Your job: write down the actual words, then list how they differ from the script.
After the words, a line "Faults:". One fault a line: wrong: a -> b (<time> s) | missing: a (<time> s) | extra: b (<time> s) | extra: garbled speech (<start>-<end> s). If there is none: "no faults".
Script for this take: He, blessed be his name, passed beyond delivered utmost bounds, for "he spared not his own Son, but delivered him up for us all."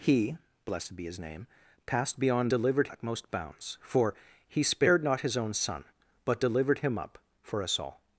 He, blessed be his name, passed beyond delivered utmost bounds, for "he spared not his own Son, but delivered him up for us all."
Faults:
no faults